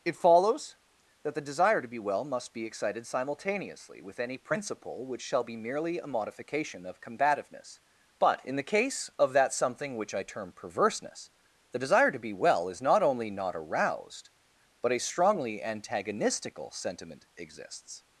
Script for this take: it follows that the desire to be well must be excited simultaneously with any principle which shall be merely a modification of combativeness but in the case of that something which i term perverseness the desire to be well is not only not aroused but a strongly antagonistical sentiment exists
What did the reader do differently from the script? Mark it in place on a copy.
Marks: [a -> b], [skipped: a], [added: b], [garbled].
it follows that the desire to be well must be excited simultaneously with any principle which shall be merely a modification of combativeness but in the case of that something which i term perverseness the desire to be well is not only not aroused but a strongly antagonistical sentiment exists